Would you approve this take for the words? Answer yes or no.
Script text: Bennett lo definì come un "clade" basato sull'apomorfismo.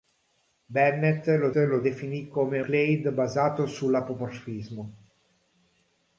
no